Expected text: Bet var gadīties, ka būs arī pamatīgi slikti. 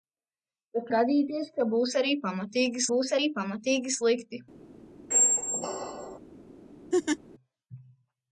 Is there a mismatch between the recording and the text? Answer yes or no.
yes